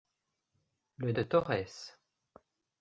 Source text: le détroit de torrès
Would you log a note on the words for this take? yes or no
yes